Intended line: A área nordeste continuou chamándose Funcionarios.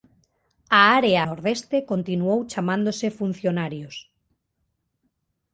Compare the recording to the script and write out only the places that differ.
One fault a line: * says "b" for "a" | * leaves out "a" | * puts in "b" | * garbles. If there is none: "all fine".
all fine